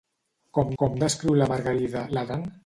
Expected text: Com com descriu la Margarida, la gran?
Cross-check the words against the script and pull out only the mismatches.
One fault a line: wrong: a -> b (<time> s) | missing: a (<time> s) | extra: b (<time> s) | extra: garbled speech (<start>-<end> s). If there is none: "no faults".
no faults